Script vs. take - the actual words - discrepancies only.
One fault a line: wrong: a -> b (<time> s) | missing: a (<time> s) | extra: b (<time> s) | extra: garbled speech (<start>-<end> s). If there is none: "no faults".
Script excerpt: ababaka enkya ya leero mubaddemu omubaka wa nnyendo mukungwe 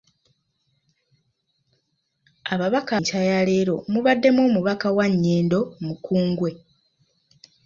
no faults